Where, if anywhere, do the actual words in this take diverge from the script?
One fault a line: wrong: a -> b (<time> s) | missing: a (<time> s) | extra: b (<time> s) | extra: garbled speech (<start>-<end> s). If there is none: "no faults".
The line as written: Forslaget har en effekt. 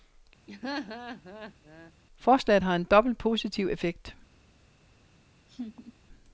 extra: dobbelt positiv (2.8 s)